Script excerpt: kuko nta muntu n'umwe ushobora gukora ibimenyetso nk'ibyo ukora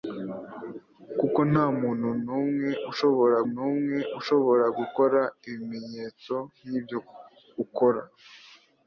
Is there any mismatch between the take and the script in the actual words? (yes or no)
yes